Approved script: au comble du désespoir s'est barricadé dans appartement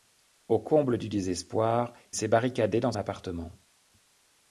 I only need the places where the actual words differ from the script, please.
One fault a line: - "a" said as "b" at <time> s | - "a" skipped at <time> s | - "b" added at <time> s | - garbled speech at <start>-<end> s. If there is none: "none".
none